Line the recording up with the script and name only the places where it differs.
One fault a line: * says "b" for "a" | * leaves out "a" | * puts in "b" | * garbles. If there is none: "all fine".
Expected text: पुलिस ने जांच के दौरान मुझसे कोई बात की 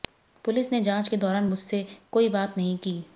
* puts in "नहीं"